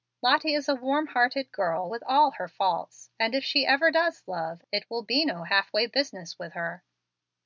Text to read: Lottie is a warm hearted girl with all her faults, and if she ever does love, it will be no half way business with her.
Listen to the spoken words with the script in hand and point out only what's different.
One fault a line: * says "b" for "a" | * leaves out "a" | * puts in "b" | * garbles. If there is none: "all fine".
all fine